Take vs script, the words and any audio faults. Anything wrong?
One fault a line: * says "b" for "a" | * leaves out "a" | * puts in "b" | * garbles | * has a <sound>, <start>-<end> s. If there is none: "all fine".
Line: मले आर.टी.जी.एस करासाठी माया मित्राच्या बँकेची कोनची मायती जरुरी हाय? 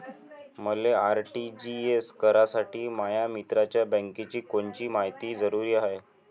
all fine